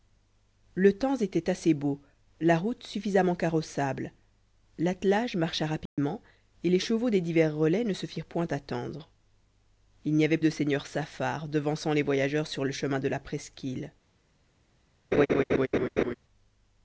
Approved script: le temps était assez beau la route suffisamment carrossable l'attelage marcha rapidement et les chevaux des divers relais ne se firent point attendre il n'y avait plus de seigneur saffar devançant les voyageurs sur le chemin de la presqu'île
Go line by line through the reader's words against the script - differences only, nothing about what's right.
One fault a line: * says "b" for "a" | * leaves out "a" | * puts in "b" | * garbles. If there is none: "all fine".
* leaves out "plus"